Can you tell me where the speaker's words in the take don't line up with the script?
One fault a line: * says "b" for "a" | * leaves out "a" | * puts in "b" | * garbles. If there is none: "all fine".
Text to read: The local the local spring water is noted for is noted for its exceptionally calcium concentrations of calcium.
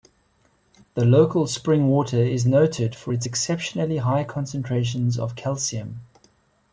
* leaves out "the local"
* leaves out "is noted for"
* says "high" for "calcium"